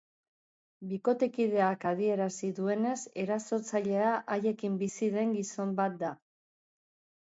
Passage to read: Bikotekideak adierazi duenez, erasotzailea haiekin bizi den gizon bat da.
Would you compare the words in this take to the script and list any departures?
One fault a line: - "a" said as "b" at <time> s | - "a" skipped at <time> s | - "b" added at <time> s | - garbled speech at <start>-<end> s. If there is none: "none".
none